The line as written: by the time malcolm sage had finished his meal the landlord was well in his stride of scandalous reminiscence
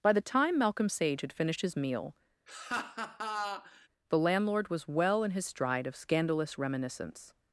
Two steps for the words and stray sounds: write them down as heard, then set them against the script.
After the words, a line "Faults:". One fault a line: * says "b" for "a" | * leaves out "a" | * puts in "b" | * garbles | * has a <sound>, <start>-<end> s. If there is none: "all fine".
by the time malcolm sage had finished his meal the landlord was well in his stride of scandalous reminiscence
Faults:
* has a laugh, 2.5-3.9 s